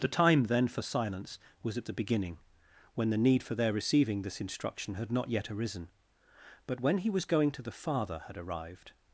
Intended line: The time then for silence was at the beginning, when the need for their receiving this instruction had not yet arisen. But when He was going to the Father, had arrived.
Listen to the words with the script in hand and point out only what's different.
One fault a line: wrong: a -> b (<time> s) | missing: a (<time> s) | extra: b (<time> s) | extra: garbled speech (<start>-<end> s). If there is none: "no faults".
no faults